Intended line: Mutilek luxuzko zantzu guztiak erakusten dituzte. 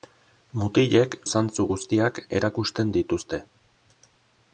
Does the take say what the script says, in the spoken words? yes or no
no